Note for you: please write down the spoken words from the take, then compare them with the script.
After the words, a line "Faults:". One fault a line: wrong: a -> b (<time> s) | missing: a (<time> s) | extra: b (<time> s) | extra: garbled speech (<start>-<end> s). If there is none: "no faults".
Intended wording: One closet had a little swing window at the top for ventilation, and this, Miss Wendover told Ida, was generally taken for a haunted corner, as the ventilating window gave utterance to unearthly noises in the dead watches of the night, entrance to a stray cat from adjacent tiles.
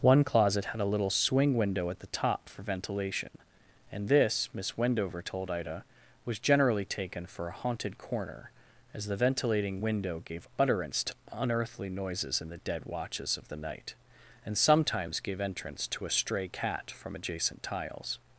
One closet had a little swing window at the top for ventilation, and this, Miss Wendover told Ida, was generally taken for a haunted corner, as the ventilating window gave utterance to unearthly noises in the dead watches of the night, and sometimes gave entrance to a stray cat from adjacent tiles.
Faults:
extra: and sometimes gave (14.5 s)